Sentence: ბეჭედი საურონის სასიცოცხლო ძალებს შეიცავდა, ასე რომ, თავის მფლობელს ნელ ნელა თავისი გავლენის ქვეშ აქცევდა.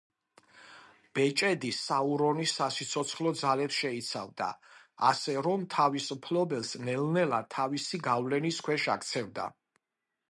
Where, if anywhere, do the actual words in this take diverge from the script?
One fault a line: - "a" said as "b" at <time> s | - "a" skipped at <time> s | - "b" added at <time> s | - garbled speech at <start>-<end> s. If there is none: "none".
none